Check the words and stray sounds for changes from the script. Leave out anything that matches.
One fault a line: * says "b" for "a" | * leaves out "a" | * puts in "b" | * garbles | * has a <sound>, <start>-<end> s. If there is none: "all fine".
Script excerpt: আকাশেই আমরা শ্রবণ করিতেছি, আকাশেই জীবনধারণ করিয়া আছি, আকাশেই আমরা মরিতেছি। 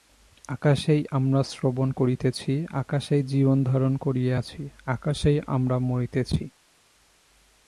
all fine